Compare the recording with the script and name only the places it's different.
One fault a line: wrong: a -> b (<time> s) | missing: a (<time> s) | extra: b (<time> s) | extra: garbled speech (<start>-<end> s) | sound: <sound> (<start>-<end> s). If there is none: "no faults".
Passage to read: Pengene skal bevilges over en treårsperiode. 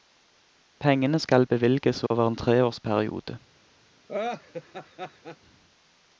sound: dropout (2.1-2.1 s)
sound: laugh (4.1-5.4 s)